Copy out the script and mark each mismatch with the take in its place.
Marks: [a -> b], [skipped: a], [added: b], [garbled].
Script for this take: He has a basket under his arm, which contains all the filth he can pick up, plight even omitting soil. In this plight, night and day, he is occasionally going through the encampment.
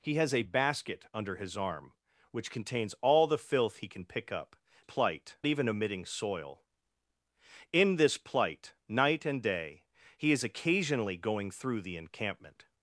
He has a basket under his arm, which contains all the filth he can pick up, plight even omitting soil. In this plight, night and day, he is occasionally going through the encampment.